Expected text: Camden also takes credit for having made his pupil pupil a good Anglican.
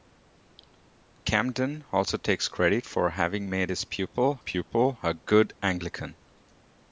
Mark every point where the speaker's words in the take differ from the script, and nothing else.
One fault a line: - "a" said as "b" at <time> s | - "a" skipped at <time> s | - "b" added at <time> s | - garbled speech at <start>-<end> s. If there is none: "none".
none